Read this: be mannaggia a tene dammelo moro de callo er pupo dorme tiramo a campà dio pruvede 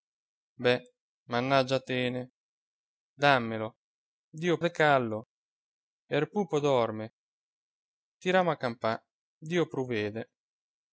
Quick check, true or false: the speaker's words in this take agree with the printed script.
false